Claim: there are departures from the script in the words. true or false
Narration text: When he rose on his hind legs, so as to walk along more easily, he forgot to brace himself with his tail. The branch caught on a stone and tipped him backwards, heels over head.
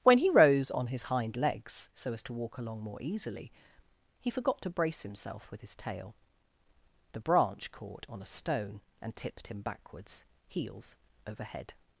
false